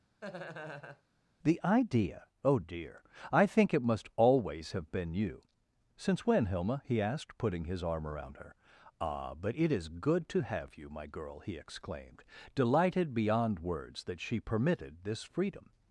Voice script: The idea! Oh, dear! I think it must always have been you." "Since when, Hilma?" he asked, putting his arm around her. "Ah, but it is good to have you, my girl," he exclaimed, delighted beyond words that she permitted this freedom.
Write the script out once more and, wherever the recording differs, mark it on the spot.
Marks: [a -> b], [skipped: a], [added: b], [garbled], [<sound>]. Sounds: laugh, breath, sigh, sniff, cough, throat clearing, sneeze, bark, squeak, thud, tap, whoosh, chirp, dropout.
[laugh] The idea! Oh, dear! I think it must always have been you." "Since when, Hilma?" he asked, putting his arm around her. "Ah, but it is good to have you, my girl," he exclaimed, delighted beyond words that she permitted this freedom.